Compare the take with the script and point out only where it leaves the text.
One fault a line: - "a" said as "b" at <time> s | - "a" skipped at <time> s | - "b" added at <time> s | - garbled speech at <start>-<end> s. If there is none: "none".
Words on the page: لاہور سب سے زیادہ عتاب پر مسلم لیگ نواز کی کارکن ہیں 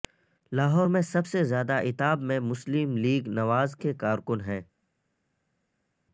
- "میں" added at 0.9 s
- "پر" said as "میں" at 2.2 s
- "کی" said as "کے" at 3.8 s